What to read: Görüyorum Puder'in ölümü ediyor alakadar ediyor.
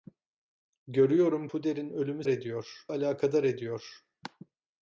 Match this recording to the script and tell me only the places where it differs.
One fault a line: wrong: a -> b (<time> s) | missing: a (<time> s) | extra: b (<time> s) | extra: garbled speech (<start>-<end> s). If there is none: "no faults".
no faults